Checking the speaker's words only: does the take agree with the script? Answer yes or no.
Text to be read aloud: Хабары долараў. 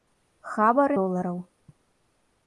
yes